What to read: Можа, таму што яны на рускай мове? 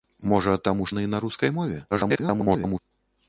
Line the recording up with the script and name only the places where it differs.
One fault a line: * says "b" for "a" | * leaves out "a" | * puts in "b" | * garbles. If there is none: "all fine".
* leaves out "што"
* garbles